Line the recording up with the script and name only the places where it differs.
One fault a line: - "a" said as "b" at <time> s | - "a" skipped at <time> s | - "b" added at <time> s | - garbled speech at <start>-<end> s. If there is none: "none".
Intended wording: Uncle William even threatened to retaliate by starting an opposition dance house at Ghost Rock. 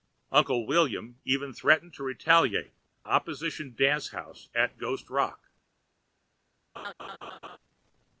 - "by starting an" skipped at 2.7 s